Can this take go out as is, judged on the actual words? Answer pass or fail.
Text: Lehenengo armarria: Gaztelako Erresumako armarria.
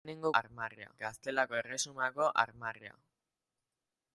pass